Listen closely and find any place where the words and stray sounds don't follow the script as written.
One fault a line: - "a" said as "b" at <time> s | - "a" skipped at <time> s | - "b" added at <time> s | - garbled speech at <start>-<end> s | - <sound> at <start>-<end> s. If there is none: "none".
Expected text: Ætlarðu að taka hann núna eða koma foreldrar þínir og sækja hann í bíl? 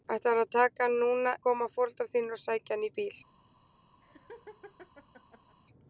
- "eða" skipped at 1.4 s
- laugh at 4.0-5.6 s